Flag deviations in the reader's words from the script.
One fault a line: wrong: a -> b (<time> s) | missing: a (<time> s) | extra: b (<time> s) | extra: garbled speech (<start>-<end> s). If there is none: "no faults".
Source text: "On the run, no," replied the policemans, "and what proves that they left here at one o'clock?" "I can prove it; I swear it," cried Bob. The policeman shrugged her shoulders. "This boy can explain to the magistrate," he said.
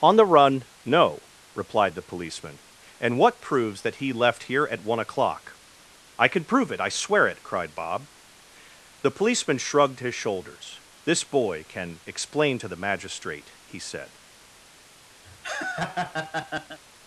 wrong: policemans -> policeman (2.0 s)
wrong: they -> he (4.0 s)
wrong: her -> his (10.0 s)